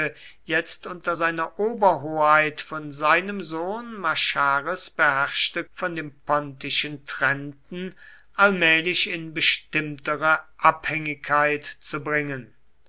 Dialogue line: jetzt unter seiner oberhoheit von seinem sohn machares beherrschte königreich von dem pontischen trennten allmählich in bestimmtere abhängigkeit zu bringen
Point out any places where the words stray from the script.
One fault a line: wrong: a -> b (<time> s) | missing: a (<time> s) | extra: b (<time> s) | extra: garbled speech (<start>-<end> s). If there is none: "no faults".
missing: königreich (5.6 s)